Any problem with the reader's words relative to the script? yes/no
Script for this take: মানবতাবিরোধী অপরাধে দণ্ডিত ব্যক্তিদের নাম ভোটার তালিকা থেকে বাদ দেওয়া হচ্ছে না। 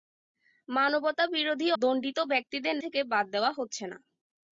yes